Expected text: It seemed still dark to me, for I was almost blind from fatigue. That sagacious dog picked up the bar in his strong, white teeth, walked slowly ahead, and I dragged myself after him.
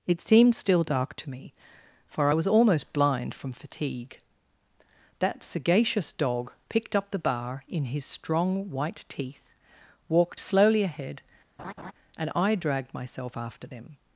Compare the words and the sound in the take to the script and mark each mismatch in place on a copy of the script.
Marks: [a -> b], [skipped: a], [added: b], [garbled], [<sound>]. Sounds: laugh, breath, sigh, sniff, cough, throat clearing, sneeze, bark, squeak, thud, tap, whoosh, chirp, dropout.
It seemed still dark to me, for I was almost blind from fatigue. That sagacious dog picked up the bar in his strong, white teeth, walked slowly ahead, [laugh] and I dragged myself after [him. -> them]